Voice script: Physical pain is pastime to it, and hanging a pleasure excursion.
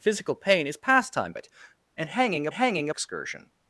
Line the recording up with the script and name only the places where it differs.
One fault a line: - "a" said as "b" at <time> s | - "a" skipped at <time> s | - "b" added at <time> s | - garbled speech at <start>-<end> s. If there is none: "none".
- "to" skipped at 1.3 s
- "pleasure" said as "hanging" at 2.5 s